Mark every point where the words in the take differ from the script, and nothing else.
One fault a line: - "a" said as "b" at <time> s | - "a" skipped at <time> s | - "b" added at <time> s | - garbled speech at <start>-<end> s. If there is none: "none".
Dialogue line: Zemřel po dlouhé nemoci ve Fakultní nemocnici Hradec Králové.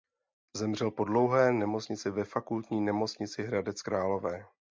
none